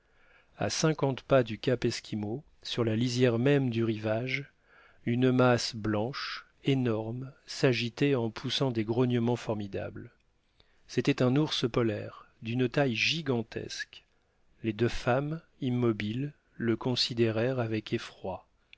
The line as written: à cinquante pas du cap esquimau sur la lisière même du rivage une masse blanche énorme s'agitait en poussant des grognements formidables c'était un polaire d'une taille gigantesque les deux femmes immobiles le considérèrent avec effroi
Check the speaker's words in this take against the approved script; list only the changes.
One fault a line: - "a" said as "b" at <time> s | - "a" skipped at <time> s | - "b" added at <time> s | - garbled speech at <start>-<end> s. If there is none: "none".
- "ours" added at 11.3 s